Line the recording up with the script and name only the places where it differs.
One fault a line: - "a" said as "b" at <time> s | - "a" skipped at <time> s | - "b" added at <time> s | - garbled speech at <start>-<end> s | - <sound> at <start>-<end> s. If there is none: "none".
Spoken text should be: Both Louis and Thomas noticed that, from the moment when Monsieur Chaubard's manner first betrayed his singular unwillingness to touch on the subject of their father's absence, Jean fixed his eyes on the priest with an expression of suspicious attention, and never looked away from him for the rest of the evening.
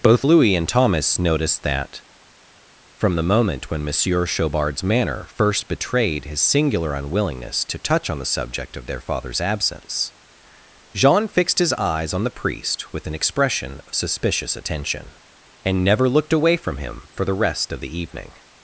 none